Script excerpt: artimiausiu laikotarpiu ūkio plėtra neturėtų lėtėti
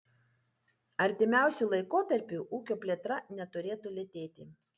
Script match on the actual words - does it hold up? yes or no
yes